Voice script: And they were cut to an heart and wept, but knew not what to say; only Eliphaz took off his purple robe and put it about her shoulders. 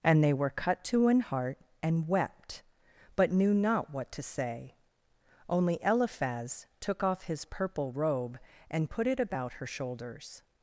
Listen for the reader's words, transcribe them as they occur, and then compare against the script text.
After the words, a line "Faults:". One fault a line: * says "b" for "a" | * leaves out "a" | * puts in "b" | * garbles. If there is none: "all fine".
And they were cut to an heart and wept, but knew not what to say; only Eliphaz took off his purple robe and put it about her shoulders.
Faults:
all fine